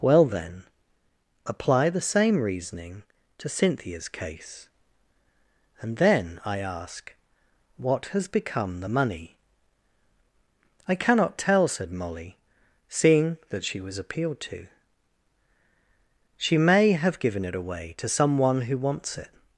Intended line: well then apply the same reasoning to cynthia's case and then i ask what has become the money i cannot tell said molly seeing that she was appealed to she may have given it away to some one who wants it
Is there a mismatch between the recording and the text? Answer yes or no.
no